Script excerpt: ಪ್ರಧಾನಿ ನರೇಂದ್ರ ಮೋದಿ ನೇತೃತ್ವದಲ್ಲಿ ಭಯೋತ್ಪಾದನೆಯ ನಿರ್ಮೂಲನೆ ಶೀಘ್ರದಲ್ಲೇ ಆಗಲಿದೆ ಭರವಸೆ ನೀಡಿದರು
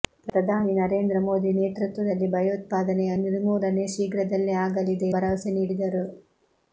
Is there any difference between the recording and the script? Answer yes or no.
no